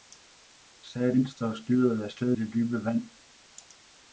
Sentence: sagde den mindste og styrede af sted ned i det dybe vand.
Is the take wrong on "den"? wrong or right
wrong